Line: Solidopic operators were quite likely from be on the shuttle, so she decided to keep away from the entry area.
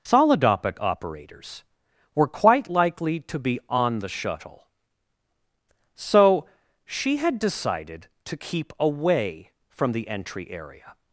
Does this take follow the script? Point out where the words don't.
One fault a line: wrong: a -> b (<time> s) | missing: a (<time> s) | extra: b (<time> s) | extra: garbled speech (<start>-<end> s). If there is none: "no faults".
wrong: from -> to (3.2 s)
extra: had (7.2 s)